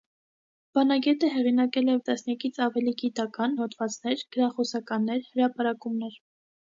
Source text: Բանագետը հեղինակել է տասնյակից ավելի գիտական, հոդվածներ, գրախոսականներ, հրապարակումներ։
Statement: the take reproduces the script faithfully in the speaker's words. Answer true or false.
true